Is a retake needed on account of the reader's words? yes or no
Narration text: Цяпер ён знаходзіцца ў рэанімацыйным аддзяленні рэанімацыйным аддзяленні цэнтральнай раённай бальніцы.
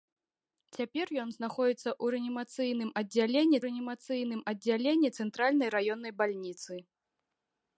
no